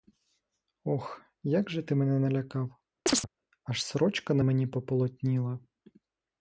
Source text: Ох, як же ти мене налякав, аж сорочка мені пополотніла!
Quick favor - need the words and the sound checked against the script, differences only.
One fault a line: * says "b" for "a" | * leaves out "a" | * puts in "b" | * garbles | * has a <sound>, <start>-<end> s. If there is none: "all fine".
* has a chirp, 3.1-3.3 s
* puts in "на"